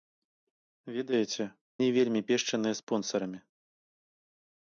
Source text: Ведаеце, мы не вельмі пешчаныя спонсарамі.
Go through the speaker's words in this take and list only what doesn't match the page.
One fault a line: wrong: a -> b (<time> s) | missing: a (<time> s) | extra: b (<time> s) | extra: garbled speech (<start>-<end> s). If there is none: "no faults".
missing: мы (1.4 s)